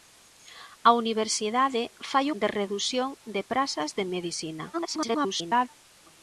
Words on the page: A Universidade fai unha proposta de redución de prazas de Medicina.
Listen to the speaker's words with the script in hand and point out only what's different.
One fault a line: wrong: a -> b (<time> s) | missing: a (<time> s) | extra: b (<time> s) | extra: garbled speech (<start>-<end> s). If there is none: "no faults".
missing: unha proposta (2.2 s)
extra: garbled speech (4.7-5.7 s)